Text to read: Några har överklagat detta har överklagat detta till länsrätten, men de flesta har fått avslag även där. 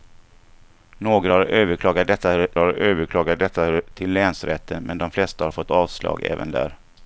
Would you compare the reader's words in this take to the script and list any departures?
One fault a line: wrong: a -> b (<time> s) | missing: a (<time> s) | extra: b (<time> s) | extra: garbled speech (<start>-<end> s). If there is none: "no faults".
no faults